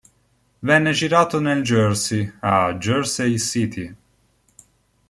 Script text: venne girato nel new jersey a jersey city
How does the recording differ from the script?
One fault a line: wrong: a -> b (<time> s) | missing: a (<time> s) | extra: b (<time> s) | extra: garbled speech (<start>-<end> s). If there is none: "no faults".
missing: new (1.6 s)